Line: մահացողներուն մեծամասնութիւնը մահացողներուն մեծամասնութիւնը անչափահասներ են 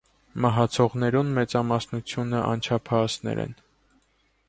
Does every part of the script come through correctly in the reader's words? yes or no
no